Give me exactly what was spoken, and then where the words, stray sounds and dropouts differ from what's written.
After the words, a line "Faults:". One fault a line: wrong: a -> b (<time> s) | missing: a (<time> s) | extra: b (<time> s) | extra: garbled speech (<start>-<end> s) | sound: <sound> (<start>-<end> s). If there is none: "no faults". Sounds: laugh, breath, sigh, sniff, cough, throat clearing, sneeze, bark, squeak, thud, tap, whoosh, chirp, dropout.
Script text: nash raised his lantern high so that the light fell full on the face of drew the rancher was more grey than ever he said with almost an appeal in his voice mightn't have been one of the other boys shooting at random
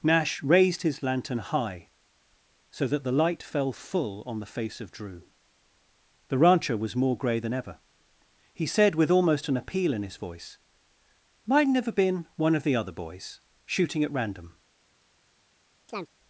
nash raised his lantern high so that the light fell full on the face of drew the rancher was more grey than ever he said with almost an appeal in his voice mightn't have been one of the other boys shooting at random
Faults:
sound: chirp (15.9-16.1 s)